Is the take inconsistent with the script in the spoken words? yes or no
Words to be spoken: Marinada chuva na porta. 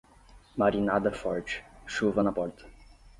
yes